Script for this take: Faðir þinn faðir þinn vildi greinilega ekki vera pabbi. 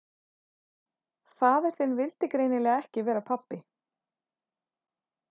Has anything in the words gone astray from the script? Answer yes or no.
yes